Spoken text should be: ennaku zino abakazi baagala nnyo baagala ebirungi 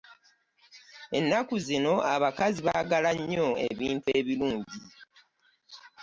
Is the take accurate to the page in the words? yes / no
no